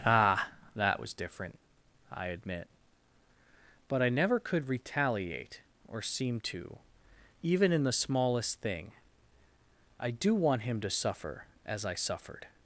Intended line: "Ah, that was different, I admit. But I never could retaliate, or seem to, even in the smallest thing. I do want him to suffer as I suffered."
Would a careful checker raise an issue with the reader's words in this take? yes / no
no